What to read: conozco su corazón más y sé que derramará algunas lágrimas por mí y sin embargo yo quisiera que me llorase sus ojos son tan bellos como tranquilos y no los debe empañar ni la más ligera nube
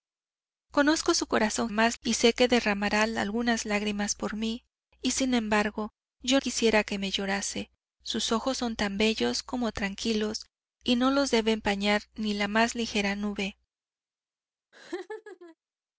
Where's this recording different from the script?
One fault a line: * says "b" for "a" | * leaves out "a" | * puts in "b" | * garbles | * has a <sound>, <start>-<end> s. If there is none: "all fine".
* has a laugh, 14.7-15.6 s